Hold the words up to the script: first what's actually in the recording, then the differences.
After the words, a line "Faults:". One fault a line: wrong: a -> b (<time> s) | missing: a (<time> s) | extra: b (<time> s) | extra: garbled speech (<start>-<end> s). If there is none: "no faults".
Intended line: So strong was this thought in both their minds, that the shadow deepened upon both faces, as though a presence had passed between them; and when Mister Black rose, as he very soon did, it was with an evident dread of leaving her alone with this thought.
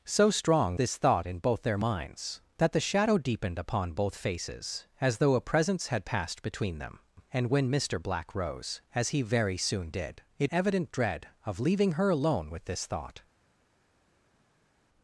So strong this thought in both their minds, that the shadow deepened upon both faces, as though a presence had passed between them; and when Mister Black rose, as he very soon did, it evident dread of leaving her alone with this thought.
Faults:
missing: was (0.8 s)
missing: was with an (10.5 s)